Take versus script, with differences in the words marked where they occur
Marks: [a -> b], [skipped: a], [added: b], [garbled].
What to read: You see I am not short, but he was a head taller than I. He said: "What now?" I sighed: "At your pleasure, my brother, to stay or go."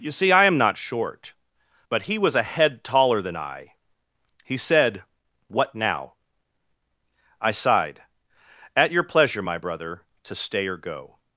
You see I am not short, but he was a head taller than I. He said: "What now?" I sighed: "At your pleasure, my brother, to stay or go."